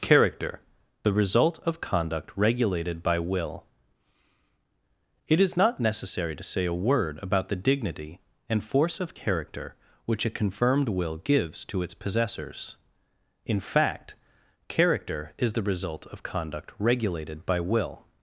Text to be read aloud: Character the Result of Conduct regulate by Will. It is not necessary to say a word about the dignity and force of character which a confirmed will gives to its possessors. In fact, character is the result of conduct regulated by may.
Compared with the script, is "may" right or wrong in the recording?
wrong